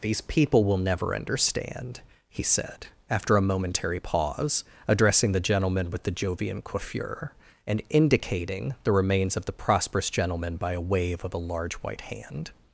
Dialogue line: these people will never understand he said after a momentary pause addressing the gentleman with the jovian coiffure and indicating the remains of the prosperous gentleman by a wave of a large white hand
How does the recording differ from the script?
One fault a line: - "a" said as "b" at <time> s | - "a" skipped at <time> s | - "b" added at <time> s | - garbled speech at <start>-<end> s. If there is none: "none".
none